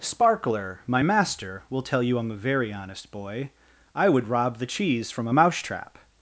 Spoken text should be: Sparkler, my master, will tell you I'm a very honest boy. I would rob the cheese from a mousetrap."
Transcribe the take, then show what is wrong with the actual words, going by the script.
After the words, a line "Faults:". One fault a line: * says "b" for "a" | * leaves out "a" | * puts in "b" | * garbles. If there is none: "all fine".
Sparkler, my master, will tell you I'm a very honest boy. I would rob the cheese from a mousetrap."
Faults:
all fine